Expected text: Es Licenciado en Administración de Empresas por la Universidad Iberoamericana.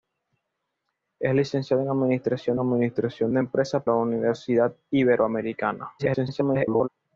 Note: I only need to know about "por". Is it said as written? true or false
false